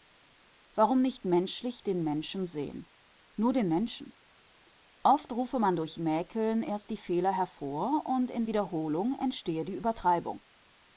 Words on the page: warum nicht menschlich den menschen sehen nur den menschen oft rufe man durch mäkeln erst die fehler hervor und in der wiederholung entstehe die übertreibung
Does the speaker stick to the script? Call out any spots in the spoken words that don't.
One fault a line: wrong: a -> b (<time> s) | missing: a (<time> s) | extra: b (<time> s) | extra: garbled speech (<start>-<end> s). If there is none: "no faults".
missing: der (8.4 s)